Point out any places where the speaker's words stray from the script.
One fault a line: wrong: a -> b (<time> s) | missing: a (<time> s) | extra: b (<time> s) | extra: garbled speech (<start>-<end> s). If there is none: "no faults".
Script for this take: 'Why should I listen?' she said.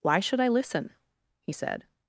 wrong: she -> he (1.4 s)